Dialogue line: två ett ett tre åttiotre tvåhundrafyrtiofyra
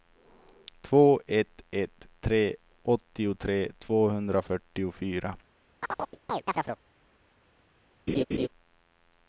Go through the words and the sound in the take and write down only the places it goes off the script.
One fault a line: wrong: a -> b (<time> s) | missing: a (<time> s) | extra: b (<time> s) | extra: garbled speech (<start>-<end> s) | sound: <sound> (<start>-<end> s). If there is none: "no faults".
sound: chirp (5.8-6.8 s)
sound: laugh (8.1-8.5 s)